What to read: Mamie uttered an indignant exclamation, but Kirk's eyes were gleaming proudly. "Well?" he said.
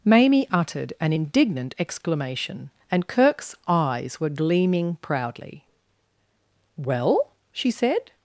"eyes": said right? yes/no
yes